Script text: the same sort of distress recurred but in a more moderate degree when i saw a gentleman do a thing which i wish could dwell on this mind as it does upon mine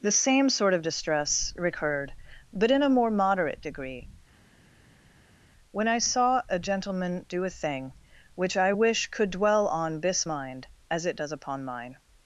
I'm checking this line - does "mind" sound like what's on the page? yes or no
yes